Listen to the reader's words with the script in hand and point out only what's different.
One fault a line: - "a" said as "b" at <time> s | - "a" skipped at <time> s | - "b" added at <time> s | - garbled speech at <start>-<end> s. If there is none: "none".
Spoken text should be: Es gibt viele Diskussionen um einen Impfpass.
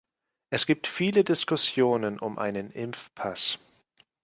none